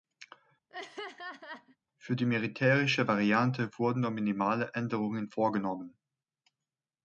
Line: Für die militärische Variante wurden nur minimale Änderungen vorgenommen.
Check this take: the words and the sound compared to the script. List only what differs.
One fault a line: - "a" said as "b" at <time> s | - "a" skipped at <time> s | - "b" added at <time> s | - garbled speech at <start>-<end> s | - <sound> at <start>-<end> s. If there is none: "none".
- laugh at 0.7-1.8 s